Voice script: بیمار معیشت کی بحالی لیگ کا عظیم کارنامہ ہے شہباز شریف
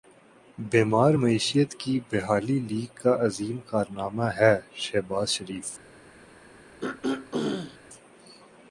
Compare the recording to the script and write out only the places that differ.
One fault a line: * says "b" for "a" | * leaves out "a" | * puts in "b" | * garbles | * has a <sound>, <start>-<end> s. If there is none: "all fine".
* has a throat clearing, 6.8-7.8 s